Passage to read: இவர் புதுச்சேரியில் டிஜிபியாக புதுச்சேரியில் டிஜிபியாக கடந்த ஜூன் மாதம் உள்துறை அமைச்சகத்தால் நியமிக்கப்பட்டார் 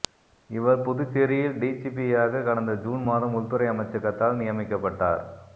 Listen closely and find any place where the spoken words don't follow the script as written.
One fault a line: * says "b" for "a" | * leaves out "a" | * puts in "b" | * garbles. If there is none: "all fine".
* leaves out "புதுச்சேரியில் டிஜிபியாக"